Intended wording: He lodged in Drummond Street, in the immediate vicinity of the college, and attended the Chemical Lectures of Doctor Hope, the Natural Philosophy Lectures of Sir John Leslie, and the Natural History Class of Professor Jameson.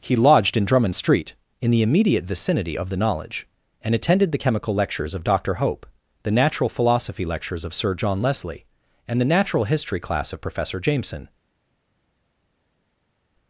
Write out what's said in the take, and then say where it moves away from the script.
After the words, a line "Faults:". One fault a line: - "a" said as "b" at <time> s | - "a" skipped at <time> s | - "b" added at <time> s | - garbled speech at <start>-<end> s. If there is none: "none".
He lodged in Drummond Street, in the immediate vicinity of the knowledge, and attended the Chemical Lectures of Doctor Hope, the Natural Philosophy Lectures of Sir John Leslie, and the Natural History Class of Professor Jameson.
Faults:
- "college" said as "knowledge" at 3.0 s